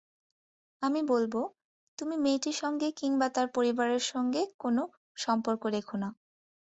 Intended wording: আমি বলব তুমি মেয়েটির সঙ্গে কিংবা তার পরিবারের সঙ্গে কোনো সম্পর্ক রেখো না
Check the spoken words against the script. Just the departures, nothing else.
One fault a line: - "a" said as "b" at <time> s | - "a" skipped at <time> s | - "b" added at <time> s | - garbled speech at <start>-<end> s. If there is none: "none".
none